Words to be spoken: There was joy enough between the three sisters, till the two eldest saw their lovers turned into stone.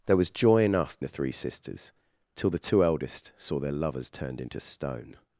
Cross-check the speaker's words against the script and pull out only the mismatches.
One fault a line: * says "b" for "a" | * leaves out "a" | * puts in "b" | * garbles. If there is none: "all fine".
* leaves out "between"